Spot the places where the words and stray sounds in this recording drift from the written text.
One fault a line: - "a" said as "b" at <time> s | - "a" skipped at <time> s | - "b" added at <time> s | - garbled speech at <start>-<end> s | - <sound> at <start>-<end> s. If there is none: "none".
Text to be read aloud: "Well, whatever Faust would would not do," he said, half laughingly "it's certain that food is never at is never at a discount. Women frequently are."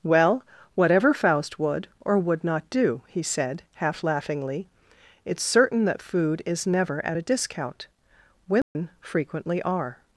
- "or" added at 2.0 s
- "is never at" skipped at 7.2 s
- dropout at 8.6-8.7 s